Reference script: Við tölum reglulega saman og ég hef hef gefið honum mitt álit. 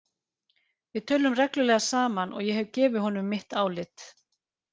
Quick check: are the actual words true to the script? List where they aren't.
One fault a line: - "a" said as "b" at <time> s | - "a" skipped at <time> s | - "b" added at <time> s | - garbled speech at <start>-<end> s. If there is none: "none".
- "hef" skipped at 2.7 s